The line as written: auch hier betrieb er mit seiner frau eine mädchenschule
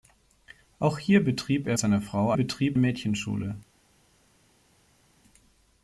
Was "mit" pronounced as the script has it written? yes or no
no